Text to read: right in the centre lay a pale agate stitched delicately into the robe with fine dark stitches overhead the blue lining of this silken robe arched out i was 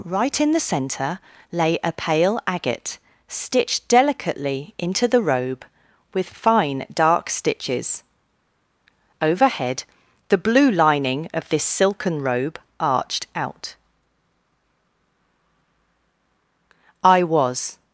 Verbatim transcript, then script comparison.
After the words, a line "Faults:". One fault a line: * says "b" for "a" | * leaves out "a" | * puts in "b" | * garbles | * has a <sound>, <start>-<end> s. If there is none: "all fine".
right in the centre lay a pale agate stitched delicately into the robe with fine dark stitches overhead the blue lining of this silken robe arched out i was
Faults:
all fine